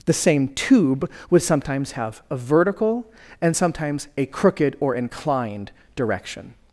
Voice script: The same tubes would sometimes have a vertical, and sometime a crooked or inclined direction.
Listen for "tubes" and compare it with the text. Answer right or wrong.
wrong